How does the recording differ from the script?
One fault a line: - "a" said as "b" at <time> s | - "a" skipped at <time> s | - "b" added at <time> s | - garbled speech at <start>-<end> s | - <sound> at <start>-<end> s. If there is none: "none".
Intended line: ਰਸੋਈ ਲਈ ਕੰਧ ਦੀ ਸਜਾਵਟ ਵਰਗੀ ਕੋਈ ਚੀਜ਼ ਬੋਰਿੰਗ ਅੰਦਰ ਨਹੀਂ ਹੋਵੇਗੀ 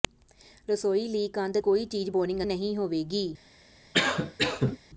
- "ਦੀ ਸਜਾਵਟ ਵਰਗੀ" skipped at 1.6 s
- "ਅੰਦਰ" skipped at 2.4 s
- cough at 3.9-4.8 s